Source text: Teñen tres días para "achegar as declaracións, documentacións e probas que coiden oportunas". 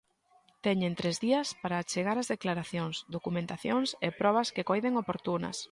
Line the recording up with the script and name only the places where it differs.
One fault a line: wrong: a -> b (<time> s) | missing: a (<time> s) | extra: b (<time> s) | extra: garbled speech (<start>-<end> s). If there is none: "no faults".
no faults